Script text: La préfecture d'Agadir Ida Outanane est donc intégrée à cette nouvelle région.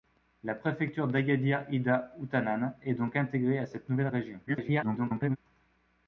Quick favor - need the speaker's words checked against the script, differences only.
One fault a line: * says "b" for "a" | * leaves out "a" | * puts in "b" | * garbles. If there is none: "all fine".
* garbles